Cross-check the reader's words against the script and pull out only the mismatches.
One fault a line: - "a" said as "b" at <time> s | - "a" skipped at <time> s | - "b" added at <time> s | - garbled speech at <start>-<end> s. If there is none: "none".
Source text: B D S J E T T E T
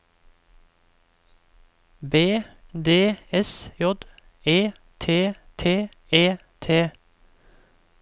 none